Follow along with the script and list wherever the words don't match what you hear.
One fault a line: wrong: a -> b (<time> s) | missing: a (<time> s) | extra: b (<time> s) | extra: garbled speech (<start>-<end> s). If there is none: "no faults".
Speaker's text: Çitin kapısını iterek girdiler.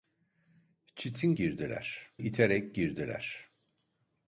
wrong: kapısını -> girdiler (1.4 s)